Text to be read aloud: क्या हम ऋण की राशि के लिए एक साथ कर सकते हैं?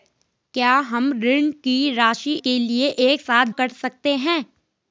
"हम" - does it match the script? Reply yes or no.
yes